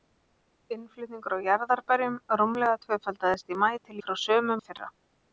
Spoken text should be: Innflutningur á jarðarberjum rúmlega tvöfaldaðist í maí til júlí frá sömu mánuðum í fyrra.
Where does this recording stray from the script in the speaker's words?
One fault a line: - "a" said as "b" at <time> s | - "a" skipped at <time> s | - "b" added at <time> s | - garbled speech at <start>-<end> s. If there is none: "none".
- "júlí" skipped at 4.0 s
- "mánuðum" skipped at 4.6 s